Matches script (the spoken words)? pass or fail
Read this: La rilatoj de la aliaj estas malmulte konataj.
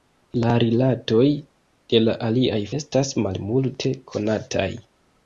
pass